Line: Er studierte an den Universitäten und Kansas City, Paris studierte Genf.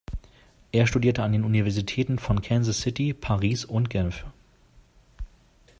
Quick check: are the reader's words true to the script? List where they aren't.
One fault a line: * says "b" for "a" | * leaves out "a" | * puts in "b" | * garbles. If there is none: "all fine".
* says "von" for "und"
* says "und" for "studierte"